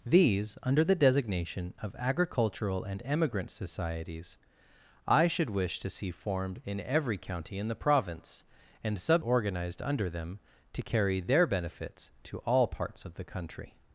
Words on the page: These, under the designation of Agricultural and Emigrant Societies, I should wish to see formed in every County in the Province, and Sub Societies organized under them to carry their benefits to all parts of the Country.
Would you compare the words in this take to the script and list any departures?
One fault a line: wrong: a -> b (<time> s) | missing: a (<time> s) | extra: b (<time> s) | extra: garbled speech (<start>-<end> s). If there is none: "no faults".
missing: Societies (9.2 s)